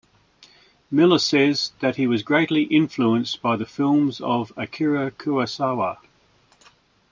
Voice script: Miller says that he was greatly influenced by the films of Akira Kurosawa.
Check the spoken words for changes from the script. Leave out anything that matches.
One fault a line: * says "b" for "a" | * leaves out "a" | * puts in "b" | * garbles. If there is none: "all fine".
all fine